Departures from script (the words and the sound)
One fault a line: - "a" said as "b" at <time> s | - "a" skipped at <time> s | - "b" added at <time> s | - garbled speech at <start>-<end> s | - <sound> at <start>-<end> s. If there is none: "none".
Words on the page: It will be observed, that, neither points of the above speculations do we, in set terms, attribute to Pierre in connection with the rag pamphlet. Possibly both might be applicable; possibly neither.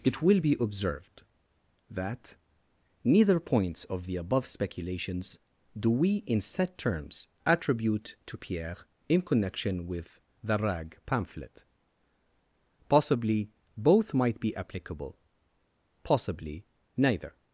none